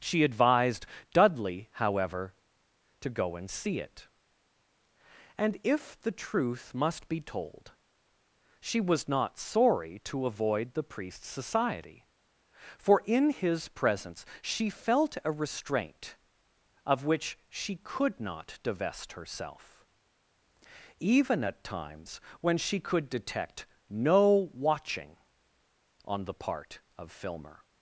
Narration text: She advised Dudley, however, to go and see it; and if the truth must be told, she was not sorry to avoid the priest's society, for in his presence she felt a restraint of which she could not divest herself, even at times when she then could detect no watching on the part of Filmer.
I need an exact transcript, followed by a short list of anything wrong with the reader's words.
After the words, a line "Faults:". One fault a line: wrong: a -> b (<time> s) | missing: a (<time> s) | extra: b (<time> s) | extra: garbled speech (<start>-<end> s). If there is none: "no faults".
She advised Dudley, however, to go and see it; and if the truth must be told, she was not sorry to avoid the priest's society, for in his presence she felt a restraint of which she could not divest herself, even at times when she could detect no watching on the part of Filmer.
Faults:
missing: then (22.8 s)